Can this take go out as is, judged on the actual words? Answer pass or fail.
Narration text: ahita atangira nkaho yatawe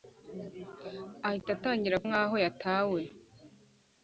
pass